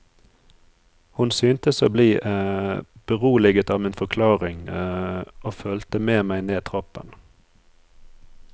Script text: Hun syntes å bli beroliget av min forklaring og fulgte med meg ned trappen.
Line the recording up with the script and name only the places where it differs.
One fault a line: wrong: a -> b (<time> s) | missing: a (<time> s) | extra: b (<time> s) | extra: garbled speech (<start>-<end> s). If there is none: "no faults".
no faults